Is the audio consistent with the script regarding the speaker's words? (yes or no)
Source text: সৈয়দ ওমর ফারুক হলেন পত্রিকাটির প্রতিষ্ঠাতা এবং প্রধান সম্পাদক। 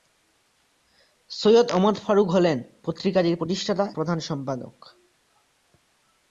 no